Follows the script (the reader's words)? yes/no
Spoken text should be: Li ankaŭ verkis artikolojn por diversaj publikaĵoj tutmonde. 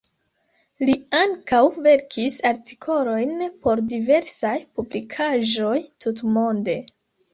yes